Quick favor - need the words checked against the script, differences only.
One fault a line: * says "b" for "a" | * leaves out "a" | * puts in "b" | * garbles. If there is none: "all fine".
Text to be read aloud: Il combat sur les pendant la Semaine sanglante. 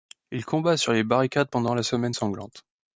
* puts in "barricades"